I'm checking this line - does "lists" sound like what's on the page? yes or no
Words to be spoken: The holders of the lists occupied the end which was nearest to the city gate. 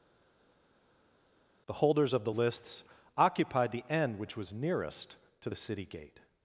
yes